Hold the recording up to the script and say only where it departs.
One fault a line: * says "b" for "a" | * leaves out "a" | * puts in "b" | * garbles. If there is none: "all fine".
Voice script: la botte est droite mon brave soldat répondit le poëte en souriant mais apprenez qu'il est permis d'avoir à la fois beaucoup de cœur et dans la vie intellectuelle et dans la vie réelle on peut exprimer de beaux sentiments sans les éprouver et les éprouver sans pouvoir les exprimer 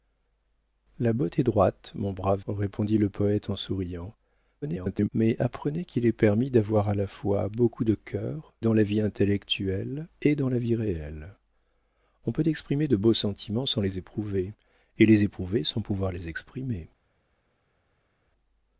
* leaves out "soldat"
* garbles
* leaves out "et"